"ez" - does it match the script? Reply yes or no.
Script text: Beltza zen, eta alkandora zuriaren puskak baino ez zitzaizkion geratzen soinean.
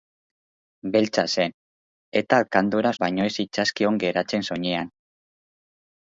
yes